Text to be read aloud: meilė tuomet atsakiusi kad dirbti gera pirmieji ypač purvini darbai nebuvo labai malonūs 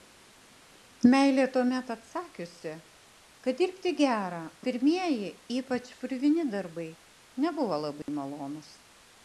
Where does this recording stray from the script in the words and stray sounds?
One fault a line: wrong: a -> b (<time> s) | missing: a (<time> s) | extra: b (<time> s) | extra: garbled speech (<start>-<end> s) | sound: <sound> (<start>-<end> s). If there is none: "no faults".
sound: dropout (8.0-8.1 s)